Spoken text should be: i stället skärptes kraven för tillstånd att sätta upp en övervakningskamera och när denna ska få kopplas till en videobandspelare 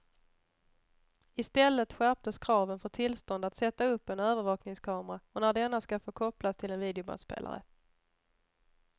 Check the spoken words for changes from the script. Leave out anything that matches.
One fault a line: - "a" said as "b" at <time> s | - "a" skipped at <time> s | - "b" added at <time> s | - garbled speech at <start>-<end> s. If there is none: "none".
none